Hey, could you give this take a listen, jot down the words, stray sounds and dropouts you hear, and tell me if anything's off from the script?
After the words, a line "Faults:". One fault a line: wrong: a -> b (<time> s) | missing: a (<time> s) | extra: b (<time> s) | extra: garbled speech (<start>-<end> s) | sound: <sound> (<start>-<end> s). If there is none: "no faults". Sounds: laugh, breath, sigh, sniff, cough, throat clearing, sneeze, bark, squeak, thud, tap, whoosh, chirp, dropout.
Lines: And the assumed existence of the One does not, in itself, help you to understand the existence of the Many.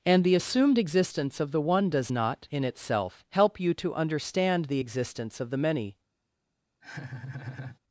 And the assumed existence of the One does not, in itself, help you to understand the existence of the Many.
Faults:
sound: laugh (6.8-7.8 s)